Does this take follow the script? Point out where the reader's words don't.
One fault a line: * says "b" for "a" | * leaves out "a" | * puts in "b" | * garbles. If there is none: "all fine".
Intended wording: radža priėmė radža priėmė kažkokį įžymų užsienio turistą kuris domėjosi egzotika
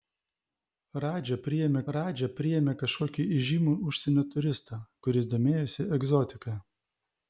all fine